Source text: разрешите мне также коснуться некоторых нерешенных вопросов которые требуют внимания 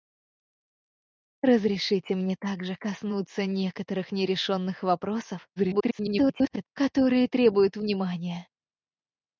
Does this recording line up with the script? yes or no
no